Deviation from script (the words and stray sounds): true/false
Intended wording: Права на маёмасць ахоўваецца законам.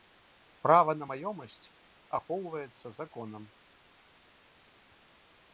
false